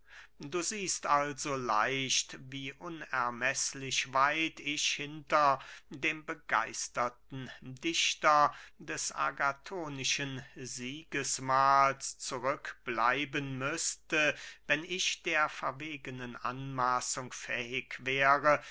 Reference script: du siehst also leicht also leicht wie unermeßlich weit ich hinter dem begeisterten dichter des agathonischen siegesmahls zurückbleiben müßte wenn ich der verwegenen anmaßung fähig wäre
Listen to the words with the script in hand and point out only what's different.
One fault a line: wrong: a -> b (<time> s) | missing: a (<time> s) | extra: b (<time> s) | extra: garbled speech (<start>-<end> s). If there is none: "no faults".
missing: also leicht (2.4 s)